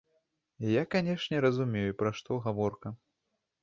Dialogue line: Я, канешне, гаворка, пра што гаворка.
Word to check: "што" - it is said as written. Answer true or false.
true